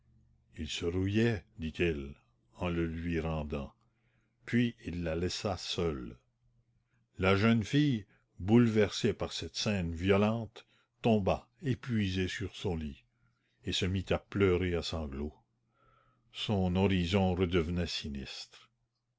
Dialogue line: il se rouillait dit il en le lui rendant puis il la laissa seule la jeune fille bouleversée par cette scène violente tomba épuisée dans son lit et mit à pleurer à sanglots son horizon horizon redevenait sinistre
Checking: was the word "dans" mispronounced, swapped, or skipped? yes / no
yes